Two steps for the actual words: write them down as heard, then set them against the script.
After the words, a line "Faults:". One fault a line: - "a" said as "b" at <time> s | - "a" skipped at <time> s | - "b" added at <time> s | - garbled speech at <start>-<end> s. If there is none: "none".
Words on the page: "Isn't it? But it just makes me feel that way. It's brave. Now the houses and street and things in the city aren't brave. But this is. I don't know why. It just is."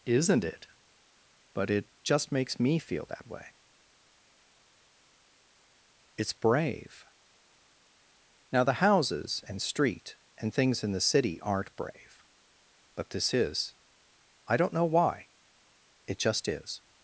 "Isn't it? But it just makes me feel that way. It's brave. Now the houses and street and things in the city aren't brave. But this is. I don't know why. It just is."
Faults:
none